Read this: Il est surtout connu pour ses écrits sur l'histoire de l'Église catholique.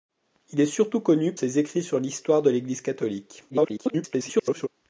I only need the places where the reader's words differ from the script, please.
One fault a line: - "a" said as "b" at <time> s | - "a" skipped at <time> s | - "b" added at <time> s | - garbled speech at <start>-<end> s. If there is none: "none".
- "pour" skipped at 1.4 s
- garbled speech at 3.5-4.7 s